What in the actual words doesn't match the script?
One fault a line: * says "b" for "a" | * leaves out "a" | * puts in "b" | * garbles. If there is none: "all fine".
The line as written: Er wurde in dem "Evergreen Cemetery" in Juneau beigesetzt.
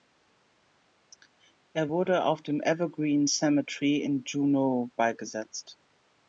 * says "auf" for "in"